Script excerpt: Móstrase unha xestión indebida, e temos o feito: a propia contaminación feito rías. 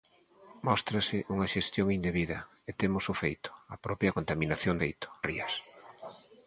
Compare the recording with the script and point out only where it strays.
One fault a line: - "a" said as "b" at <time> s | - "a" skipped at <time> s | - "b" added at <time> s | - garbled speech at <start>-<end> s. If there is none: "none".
none